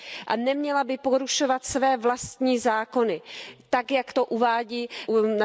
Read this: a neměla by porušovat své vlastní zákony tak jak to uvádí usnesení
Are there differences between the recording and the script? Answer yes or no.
no